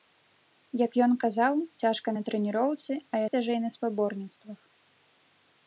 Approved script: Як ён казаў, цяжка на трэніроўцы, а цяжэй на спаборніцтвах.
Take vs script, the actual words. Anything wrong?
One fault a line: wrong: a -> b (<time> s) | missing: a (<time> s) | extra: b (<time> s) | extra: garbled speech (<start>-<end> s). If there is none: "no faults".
no faults